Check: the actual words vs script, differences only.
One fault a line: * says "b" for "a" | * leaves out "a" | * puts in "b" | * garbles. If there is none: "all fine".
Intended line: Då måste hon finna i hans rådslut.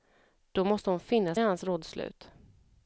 all fine